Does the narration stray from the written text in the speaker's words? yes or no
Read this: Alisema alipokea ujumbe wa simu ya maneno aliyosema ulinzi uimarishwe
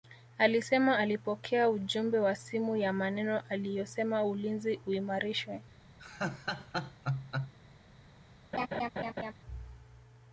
no